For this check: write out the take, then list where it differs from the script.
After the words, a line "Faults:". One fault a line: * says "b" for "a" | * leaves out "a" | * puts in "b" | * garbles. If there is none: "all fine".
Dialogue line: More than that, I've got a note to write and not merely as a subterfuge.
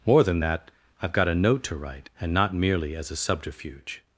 More than that, I've got a note to write and not merely as a subterfuge.
Faults:
all fine